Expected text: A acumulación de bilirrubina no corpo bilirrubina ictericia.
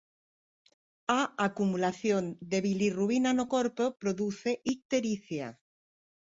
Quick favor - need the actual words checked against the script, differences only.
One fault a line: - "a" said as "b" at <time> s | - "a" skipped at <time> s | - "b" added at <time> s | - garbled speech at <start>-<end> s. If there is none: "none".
- "bilirrubina" said as "produce" at 4.0 s